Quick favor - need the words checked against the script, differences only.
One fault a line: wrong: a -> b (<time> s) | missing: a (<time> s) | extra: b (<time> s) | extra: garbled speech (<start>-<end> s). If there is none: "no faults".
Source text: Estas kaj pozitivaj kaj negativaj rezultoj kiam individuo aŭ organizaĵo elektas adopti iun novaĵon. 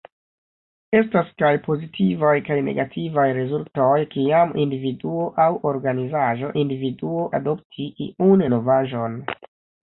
wrong: elektas -> individuo (6.6 s)